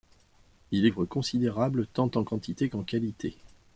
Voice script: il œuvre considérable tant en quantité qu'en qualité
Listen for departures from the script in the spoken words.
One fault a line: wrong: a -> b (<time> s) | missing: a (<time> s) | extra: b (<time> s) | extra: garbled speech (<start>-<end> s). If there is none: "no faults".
no faults